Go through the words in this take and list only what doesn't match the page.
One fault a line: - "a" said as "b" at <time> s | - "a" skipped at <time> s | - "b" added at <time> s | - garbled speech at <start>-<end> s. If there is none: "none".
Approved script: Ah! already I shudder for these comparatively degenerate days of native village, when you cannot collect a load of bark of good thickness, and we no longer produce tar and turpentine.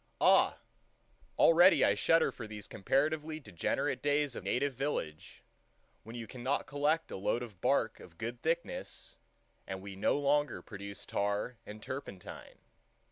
none